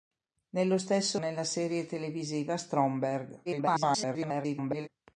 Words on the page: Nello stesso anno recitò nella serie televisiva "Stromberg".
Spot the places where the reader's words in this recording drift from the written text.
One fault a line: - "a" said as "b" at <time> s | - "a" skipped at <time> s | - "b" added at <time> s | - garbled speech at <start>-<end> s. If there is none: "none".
- "anno recitò" skipped at 1.2 s
- garbled speech at 3.5-4.9 s